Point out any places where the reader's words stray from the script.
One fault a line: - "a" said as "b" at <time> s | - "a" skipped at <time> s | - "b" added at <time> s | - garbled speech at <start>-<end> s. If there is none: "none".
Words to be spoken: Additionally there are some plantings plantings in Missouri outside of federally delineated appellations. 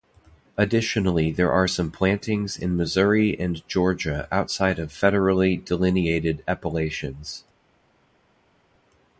- "plantings" skipped at 2.6 s
- "and Georgia" added at 3.4 s